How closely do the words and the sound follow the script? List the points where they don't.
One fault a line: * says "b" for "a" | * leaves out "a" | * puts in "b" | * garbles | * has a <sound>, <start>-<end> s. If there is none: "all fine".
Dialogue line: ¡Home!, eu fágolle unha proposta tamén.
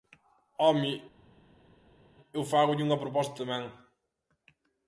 all fine